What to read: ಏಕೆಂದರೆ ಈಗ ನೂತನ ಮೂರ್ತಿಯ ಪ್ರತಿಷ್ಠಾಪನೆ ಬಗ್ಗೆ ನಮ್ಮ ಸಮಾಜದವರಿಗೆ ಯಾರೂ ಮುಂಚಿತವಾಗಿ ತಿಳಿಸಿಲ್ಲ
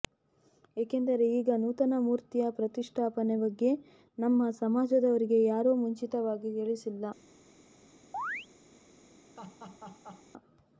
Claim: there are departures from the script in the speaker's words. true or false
false